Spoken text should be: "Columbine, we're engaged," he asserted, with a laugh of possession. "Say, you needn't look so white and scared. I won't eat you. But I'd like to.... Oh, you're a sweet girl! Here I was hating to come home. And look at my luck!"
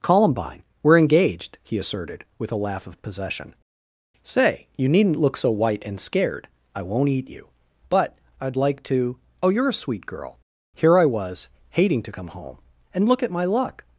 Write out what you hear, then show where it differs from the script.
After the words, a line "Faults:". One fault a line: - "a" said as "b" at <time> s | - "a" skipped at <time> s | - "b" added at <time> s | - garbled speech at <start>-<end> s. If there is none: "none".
"Columbine, we're engaged," he asserted, with a laugh of possession. "Say, you needn't look so white and scared. I won't eat you. But I'd like to.... Oh, you're a sweet girl! Here I was hating to come home. And look at my luck!"
Faults:
none